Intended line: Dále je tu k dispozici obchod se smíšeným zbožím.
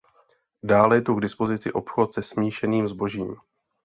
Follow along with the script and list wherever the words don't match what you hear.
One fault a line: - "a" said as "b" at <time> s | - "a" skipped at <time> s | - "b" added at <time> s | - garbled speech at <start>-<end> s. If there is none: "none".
none